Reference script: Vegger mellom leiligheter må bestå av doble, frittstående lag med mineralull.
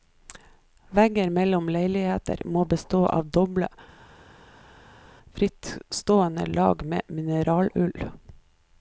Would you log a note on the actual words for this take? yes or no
no